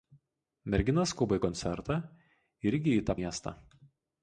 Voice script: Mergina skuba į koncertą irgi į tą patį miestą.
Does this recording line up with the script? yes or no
no